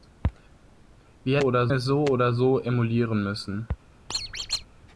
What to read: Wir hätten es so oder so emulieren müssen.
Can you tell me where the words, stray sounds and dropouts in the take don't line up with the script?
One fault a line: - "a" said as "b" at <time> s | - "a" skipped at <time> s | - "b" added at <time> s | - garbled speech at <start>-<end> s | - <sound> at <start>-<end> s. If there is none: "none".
- "hätten" said as "oder" at 1.4 s
- squeak at 4.1-4.7 s